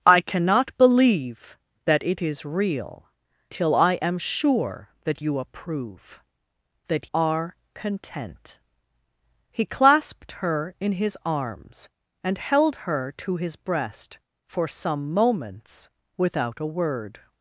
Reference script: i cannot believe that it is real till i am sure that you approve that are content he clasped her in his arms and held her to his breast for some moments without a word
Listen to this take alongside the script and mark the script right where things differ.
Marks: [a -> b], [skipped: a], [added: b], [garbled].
i cannot believe that it is real till i am sure that you approve that are content he clasped her in his arms and held her to his breast for some moments without a word